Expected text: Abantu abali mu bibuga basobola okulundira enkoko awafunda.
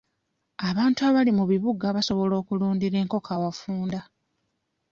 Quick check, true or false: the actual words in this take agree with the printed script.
true